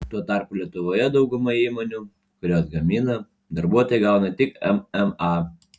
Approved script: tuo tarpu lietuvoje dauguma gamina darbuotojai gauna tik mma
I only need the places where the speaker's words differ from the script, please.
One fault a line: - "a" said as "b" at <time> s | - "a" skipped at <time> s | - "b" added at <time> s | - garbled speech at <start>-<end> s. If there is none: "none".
- "įmonių kurios" added at 1.6 s